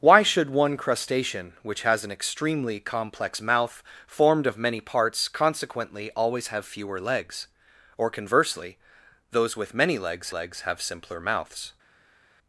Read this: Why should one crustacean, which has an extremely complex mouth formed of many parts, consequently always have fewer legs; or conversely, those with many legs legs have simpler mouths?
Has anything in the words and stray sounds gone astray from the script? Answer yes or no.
no